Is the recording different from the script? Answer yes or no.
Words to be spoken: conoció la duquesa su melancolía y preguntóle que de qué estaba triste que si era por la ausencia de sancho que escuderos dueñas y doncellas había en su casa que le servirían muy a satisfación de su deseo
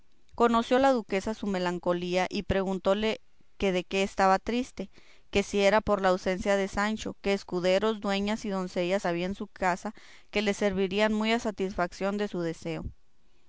no